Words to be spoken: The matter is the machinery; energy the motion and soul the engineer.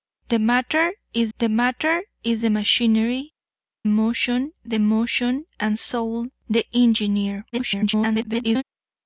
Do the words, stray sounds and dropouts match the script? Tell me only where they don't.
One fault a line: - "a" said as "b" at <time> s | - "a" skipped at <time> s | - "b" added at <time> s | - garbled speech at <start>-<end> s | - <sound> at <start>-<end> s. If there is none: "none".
- "matter is the" added at 1.5 s
- "energy" said as "motion" at 3.9 s
- garbled speech at 7.5-8.6 s